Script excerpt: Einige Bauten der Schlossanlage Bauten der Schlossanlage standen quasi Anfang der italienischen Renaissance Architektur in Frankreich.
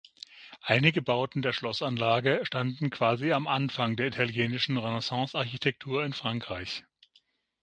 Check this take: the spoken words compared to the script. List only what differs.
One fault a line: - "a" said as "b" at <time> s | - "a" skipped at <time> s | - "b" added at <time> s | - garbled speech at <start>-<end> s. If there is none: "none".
- "Bauten der Schlossanlage" skipped at 2.4 s
- "am" added at 3.3 s